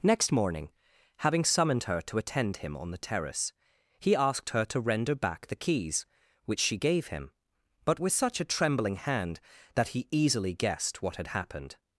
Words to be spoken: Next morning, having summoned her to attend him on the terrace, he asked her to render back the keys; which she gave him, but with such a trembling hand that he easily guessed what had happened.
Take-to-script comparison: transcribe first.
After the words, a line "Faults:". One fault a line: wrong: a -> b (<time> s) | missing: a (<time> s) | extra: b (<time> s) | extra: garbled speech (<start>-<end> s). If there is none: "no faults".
Next morning, having summoned her to attend him on the terrace, he asked her to render back the keys; which she gave him, but with such a trembling hand that he easily guessed what had happened.
Faults:
no faults